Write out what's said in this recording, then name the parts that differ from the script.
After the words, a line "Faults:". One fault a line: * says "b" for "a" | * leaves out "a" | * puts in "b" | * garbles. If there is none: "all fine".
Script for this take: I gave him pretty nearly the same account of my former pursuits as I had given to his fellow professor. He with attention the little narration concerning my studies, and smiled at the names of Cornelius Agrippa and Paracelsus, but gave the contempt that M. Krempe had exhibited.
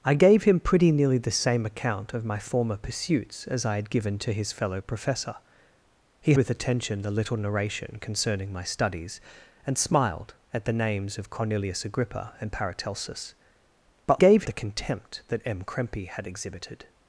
I gave him pretty nearly the same account of my former pursuits as I had given to his fellow professor. He with attention the little narration concerning my studies, and smiled at the names of Cornelius Agrippa and Paracelsus, but gave the contempt that M. Krempe had exhibited.
Faults:
all fine